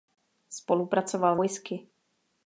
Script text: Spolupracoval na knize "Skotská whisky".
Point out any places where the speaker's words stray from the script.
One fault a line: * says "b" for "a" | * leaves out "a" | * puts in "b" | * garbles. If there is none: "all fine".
* leaves out "na knize Skotská"